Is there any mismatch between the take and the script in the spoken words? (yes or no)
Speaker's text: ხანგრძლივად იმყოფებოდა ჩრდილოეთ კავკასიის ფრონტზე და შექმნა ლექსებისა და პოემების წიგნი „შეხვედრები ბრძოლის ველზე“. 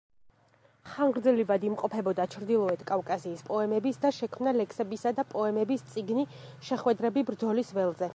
yes